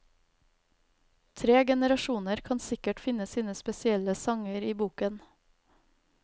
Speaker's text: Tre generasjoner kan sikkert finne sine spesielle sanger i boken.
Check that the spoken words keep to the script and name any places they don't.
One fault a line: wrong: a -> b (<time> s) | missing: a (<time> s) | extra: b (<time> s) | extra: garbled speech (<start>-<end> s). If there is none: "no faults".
no faults